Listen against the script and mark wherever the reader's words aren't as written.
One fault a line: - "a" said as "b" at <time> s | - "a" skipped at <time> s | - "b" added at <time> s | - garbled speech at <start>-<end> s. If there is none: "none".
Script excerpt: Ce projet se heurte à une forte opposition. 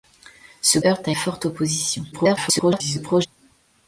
- "projet se" skipped at 0.8 s
- "une" skipped at 1.1 s
- garbled speech at 2.1-3.3 s